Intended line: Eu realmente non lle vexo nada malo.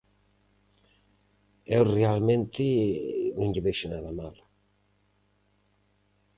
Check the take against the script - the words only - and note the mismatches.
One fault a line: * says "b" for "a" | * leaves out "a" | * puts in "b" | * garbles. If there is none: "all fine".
all fine